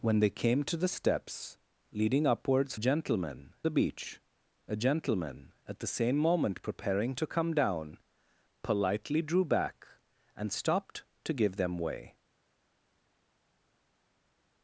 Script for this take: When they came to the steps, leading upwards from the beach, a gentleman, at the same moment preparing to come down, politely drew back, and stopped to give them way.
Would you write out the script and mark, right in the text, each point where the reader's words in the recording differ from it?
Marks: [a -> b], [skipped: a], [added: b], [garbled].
When they came to the steps, leading upwards [from -> gentleman] the beach, a gentleman, at the same moment preparing to come down, politely drew back, and stopped to give them way.